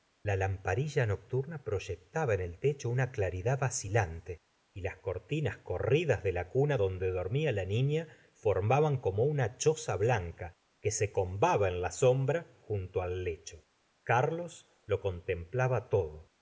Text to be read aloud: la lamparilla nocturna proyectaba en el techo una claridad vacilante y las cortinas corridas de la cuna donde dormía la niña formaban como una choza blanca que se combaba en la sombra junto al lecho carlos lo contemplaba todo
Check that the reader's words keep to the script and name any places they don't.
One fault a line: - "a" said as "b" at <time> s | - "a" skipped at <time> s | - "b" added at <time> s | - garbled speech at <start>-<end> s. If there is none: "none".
none